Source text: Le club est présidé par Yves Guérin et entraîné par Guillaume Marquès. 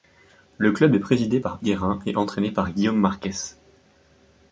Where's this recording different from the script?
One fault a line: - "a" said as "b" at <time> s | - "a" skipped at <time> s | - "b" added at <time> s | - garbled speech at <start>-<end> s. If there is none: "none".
- "Yves" skipped at 1.6 s